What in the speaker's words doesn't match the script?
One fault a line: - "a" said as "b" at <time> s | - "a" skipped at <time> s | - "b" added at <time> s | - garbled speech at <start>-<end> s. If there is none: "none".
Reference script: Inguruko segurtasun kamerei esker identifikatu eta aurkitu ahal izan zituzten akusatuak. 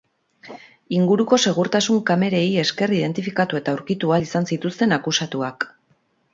none